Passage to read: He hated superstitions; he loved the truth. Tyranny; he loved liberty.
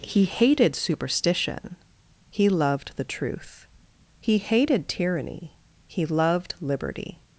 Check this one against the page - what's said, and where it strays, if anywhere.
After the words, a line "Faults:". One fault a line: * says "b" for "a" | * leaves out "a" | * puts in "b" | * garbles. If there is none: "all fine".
He hated superstition; he loved the truth. He hated tyranny; he loved liberty.
Faults:
* says "superstition" for "superstitions"
* puts in "He hated"